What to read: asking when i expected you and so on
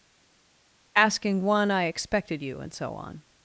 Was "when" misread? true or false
true